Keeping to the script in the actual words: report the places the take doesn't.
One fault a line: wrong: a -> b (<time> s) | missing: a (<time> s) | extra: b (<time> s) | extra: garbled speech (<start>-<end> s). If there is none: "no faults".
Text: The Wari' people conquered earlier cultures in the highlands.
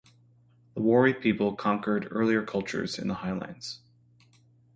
no faults